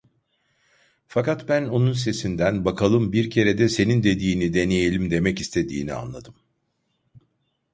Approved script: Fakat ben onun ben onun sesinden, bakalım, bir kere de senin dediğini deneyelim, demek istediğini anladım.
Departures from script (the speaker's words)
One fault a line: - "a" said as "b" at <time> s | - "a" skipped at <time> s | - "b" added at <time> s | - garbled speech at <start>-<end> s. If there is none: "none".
- "ben onun" skipped at 1.9 s